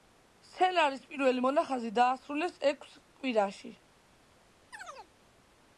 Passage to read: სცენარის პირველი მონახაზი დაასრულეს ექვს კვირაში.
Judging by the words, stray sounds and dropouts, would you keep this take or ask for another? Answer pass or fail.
fail